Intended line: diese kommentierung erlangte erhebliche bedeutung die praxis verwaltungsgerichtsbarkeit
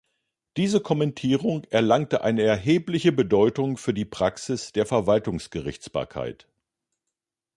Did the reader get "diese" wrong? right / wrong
right